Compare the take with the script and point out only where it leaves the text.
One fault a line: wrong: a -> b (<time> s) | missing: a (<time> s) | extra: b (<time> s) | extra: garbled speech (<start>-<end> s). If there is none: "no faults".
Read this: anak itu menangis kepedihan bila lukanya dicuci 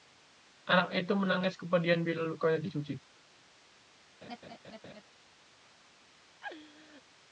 no faults